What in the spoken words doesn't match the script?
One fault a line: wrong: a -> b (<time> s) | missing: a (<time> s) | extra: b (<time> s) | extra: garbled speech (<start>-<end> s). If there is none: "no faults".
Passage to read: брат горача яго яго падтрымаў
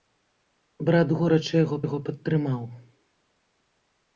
no faults